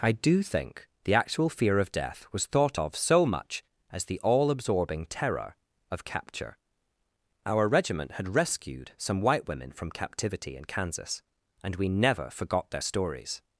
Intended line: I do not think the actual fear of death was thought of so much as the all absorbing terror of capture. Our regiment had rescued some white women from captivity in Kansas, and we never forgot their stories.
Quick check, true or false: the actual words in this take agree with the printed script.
false